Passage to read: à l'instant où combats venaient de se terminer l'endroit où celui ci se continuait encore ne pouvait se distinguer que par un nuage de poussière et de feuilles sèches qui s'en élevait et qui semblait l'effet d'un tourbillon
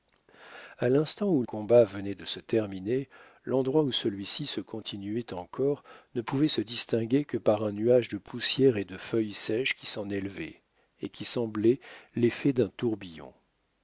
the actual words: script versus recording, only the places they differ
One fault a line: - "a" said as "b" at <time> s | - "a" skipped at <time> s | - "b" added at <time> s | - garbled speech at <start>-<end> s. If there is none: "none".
none